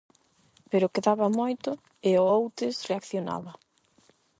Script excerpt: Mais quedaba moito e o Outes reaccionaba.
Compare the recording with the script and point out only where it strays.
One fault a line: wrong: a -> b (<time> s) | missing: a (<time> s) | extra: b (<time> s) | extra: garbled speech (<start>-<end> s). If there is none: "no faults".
wrong: Mais -> Pero (0.7 s)